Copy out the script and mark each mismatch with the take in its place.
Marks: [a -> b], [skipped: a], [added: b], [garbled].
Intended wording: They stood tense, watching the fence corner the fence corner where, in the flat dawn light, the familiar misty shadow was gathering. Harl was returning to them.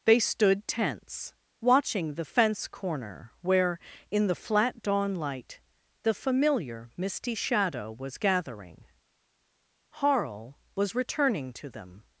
They stood tense, watching the fence corner [skipped: the fence corner] where, in the flat dawn light, the familiar misty shadow was gathering. Harl was returning to them.